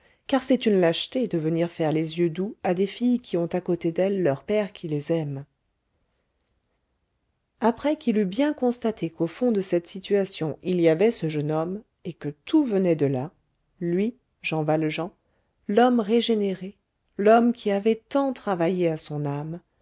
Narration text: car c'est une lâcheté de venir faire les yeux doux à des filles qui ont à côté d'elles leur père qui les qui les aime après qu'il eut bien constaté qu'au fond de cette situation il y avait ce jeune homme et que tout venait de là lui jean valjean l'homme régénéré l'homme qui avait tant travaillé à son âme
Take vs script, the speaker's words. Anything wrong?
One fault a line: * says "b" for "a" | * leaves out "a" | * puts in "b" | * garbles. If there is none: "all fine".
* leaves out "qui les"